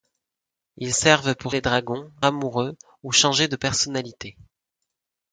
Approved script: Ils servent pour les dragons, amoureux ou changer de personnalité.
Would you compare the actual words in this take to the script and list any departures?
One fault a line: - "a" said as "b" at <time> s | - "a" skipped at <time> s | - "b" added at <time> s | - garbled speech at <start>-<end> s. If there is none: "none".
none